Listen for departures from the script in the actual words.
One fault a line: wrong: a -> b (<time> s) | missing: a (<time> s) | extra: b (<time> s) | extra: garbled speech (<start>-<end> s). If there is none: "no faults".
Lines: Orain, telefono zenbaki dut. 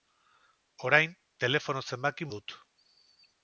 no faults